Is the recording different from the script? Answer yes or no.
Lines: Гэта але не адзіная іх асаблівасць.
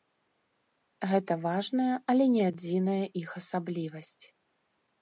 yes